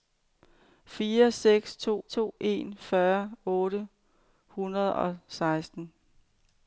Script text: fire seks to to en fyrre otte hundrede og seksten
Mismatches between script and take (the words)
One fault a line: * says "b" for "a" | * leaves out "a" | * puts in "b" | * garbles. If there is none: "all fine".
all fine